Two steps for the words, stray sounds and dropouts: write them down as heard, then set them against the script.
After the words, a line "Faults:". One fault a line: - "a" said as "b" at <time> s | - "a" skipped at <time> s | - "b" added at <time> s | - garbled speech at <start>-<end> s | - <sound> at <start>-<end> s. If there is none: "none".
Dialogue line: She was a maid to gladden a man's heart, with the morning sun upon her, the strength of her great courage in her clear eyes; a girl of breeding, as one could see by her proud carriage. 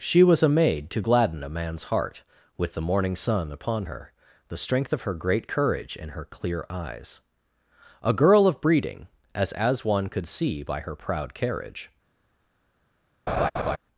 She was a maid to gladden a man's heart, with the morning sun upon her, the strength of her great courage in her clear eyes; a girl of breeding, as as one could see by her proud carriage.
Faults:
- "as" added at 9.5 s
- laugh at 13.3-13.8 s